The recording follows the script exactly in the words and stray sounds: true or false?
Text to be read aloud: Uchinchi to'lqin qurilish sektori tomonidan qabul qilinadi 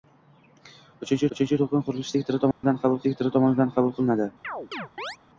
false